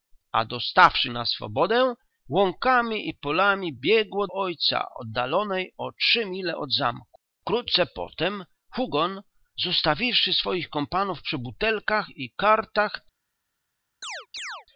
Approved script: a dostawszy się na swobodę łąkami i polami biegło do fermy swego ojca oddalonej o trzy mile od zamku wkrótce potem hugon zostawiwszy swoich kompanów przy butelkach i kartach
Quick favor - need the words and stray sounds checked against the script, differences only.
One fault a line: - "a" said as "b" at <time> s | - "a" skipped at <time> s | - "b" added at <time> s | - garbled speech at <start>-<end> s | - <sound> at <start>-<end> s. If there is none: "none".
- "się" skipped at 1.1 s
- "do fermy swego" skipped at 4.3 s
- chirp at 14.0-14.7 s